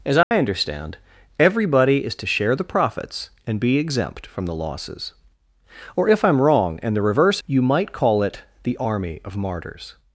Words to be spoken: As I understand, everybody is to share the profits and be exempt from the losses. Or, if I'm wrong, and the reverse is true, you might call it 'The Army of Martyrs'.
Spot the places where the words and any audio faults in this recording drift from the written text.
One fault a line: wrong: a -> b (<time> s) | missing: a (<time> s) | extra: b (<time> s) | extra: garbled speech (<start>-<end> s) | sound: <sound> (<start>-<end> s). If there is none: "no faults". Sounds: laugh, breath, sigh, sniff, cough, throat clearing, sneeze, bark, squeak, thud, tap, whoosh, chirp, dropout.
sound: dropout (0.2-0.3 s)
missing: is true (7.4 s)